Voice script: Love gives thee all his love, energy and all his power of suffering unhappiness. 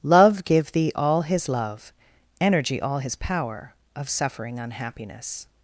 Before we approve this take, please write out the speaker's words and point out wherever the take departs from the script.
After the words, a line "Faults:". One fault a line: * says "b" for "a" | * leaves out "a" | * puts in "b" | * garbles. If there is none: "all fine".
Love give thee all his love, energy all his power of suffering unhappiness.
Faults:
* says "give" for "gives"
* leaves out "and"